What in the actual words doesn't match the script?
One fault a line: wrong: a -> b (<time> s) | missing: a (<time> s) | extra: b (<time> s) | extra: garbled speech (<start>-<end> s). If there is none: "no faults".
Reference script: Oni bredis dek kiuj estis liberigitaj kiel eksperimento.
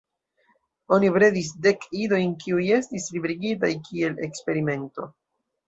extra: idojn (2.0 s)